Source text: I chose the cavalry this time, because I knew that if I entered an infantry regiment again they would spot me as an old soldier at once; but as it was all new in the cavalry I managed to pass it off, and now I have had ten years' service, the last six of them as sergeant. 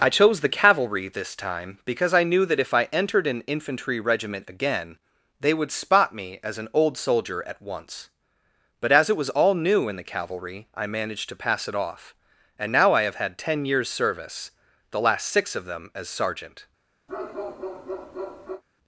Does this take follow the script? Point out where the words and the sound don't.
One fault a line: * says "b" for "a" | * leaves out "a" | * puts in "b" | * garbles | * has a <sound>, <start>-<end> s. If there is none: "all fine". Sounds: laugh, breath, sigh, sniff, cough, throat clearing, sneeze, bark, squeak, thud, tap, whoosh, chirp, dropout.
* has a bark, 17.1-18.6 s